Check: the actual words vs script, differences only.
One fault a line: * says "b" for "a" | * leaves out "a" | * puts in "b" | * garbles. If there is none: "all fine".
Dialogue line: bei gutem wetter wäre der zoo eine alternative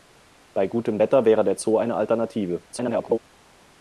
* garbles